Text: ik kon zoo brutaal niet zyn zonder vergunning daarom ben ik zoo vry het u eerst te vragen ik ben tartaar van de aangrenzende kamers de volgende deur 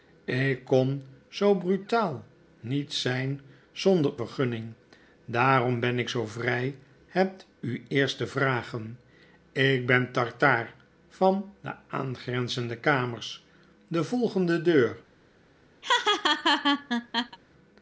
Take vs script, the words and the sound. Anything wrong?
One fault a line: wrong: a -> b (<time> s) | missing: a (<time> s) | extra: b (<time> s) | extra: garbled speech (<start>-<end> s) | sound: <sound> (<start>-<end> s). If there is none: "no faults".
sound: laugh (15.8-17.4 s)